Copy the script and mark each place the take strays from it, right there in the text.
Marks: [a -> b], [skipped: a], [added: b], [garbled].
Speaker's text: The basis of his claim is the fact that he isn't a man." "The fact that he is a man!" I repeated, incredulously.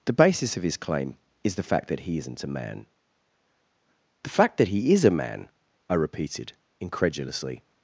The basis of his claim is the fact that he isn't a man." "The fact that he is a man!" I repeated, incredulously.